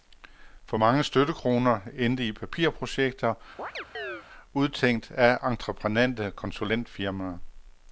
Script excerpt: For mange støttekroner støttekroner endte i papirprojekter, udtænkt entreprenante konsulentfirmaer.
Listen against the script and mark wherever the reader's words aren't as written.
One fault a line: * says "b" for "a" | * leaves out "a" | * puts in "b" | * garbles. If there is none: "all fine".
* leaves out "støttekroner"
* puts in "af"